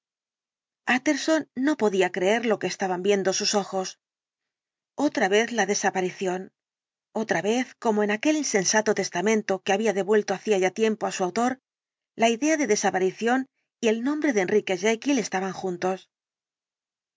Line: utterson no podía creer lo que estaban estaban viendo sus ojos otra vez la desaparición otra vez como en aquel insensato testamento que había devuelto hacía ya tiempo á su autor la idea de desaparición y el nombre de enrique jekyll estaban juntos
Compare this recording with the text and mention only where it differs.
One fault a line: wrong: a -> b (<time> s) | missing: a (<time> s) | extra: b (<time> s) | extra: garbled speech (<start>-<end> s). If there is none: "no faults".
missing: estaban (3.0 s)